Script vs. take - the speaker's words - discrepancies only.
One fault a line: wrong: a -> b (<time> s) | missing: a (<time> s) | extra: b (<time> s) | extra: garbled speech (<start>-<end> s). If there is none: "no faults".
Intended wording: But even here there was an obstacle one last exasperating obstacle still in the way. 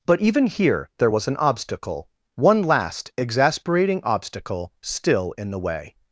no faults